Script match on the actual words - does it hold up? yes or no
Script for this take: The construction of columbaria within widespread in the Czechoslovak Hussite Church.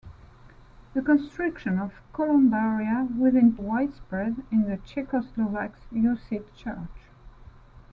yes